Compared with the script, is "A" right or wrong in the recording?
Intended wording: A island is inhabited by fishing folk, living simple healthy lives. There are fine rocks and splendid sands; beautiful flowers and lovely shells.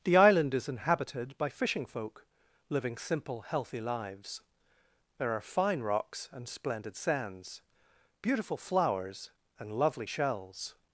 wrong